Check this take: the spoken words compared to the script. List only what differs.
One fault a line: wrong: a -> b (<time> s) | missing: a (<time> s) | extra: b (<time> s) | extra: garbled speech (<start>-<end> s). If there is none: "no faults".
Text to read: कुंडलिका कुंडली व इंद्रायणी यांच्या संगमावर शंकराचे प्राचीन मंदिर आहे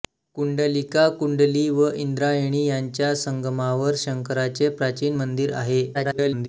extra: garbled speech (5.9-6.5 s)